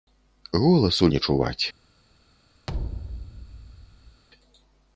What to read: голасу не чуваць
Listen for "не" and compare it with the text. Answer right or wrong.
right